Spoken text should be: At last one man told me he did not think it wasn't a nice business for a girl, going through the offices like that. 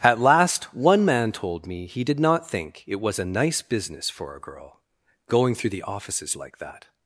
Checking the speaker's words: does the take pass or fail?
fail